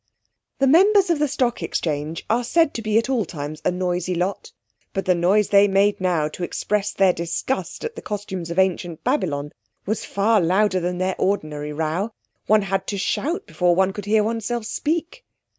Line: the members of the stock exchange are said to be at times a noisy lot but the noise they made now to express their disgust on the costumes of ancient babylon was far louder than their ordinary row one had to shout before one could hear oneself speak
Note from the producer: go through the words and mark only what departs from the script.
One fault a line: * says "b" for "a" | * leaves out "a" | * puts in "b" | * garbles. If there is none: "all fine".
* puts in "all"
* says "at" for "on"